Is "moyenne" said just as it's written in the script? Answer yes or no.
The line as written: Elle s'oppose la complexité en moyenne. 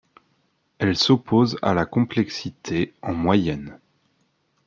yes